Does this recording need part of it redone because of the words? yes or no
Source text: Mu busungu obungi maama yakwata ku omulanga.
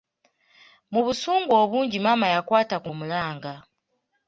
no